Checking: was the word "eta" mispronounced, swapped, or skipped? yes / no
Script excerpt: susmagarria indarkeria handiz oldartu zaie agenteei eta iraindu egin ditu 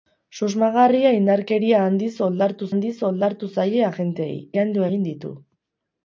yes